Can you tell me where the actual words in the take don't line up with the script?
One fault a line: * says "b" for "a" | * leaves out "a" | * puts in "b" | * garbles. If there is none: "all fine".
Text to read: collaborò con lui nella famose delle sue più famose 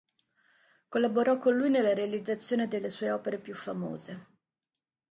* says "realizzazione" for "famose"
* puts in "opere"